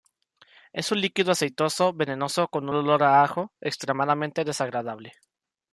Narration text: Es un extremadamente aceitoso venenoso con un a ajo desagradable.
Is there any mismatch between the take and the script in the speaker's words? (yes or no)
yes